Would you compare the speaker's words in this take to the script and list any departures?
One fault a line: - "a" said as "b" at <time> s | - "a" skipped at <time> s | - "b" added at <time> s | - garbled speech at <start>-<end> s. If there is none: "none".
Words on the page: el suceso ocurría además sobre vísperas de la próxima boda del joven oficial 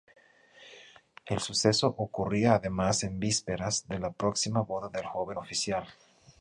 - "sobre" said as "en" at 3.0 s